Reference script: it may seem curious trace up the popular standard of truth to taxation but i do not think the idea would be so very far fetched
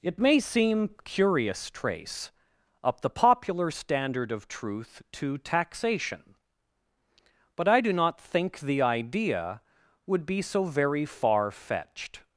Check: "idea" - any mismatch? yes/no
no